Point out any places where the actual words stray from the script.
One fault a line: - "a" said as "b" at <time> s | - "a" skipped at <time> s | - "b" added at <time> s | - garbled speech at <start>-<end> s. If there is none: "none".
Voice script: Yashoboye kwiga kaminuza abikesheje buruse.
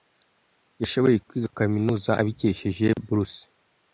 none